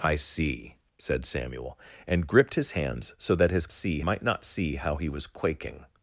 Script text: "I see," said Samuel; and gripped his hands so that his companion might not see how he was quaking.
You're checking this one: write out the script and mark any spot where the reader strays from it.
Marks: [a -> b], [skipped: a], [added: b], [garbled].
"I see," said Samuel; and gripped his hands so that his [companion -> see] might not see how he was quaking.